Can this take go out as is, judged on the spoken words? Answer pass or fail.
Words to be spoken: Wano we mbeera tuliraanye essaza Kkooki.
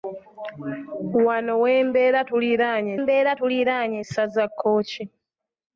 fail